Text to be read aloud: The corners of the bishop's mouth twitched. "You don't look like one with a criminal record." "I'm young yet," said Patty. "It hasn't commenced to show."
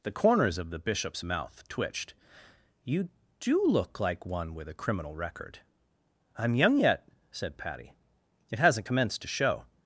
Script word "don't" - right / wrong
wrong